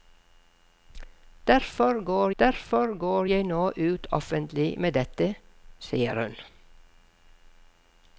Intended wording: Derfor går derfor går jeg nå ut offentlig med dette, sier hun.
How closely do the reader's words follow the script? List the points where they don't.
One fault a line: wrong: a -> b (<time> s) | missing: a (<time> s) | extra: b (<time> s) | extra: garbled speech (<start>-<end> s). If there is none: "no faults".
no faults